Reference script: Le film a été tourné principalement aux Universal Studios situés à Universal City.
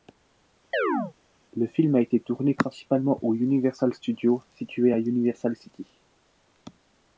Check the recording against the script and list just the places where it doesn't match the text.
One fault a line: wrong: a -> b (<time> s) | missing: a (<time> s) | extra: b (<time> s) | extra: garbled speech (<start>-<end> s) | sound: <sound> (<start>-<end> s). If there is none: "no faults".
sound: chirp (0.7-1.1 s)